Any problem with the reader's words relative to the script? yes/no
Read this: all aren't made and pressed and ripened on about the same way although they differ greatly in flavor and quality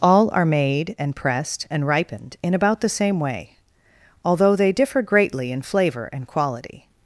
yes